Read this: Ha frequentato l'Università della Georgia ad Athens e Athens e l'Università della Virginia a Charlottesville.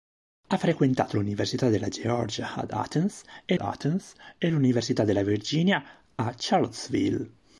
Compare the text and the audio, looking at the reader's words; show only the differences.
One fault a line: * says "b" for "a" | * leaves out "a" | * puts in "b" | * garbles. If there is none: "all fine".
all fine